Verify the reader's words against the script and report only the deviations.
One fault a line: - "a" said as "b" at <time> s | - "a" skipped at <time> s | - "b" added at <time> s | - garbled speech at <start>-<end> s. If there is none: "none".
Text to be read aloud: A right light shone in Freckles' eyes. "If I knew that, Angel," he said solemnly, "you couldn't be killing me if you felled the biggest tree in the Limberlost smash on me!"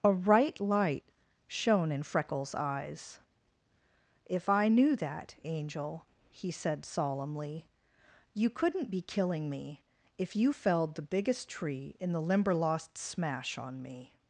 none